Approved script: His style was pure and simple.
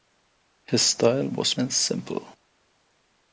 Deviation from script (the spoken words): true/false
true